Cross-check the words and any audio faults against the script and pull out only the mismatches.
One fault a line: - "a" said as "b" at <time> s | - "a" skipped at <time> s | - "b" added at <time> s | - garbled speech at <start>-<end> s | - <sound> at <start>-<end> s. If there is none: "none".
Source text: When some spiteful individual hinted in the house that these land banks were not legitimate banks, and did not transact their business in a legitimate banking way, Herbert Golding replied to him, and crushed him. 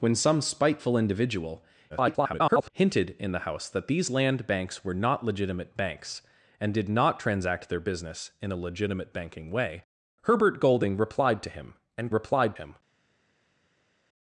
- garbled speech at 1.9-2.7 s
- "crushed" said as "replied" at 12.1 s